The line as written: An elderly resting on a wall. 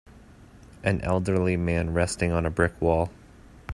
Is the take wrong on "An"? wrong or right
right